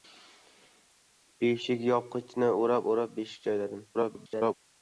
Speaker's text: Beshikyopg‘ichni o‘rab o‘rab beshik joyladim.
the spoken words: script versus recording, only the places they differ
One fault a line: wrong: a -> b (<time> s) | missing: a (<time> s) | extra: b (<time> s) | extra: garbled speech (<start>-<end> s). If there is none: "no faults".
extra: garbled speech (3.9-4.5 s)